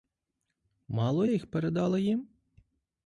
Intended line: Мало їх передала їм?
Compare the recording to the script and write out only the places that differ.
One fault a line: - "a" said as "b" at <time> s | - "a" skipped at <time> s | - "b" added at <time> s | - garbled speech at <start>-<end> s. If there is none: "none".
none